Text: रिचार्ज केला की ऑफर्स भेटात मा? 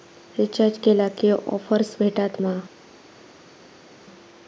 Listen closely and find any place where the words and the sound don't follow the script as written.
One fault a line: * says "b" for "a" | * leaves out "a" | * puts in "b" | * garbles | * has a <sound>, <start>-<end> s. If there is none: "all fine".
all fine